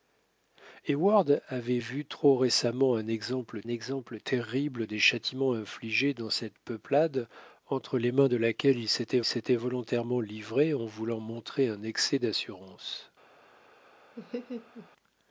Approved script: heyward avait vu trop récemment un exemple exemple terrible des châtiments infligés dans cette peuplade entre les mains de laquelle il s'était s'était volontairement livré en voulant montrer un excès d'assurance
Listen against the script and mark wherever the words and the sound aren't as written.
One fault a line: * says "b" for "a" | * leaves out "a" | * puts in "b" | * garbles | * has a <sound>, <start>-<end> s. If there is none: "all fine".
* has a laugh, 14.2-14.9 s